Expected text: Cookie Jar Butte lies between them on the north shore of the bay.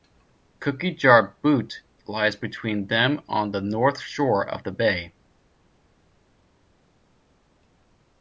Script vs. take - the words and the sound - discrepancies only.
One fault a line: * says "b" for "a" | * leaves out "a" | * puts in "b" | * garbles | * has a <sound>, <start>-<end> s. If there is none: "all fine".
all fine